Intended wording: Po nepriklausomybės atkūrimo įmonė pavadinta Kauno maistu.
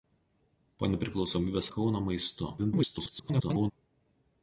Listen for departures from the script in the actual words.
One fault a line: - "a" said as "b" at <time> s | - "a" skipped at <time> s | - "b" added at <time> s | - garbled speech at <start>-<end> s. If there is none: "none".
- "atkūrimo įmonė pavadinta" skipped at 1.7 s
- garbled speech at 2.6-3.7 s